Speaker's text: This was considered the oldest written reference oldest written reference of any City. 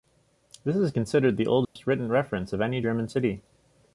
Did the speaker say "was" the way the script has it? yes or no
no